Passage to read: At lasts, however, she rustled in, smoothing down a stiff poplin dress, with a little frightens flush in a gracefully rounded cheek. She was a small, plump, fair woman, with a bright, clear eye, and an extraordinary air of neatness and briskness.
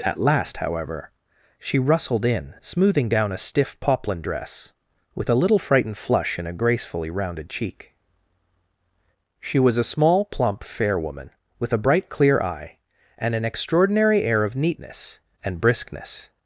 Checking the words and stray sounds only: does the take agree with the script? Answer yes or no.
no